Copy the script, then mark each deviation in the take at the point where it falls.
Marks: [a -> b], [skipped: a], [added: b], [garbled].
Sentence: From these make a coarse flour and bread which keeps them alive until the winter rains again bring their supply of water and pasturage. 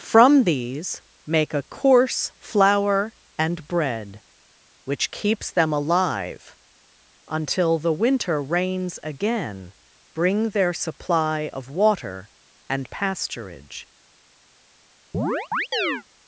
From these make a coarse flour and bread which keeps them alive until the winter rains again bring their supply of water and pasturage.